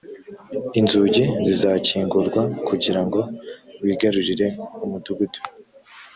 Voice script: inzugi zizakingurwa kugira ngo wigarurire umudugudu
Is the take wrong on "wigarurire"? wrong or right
right